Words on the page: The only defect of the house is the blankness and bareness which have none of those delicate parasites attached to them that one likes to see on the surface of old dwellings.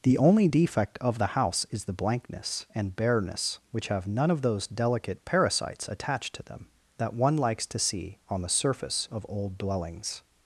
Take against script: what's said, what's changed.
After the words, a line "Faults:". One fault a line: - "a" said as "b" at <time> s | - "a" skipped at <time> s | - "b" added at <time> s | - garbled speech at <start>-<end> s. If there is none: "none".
The only defect of the house is the blankness and bareness which have none of those delicate parasites attached to them that one likes to see on the surface of old dwellings.
Faults:
none